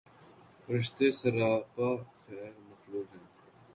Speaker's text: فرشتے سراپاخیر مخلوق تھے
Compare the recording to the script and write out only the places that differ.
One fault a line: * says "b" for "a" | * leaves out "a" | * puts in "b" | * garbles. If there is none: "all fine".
* says "ہیں" for "تھے"